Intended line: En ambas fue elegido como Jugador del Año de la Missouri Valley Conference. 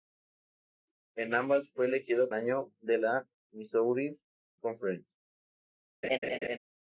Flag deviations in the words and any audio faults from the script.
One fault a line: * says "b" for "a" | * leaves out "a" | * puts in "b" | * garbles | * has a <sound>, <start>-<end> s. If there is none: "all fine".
* leaves out "como Jugador del"
* leaves out "Valley"
* has a laugh, 6.0-6.6 s